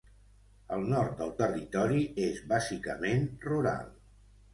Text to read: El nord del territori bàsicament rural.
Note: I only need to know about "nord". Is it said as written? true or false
true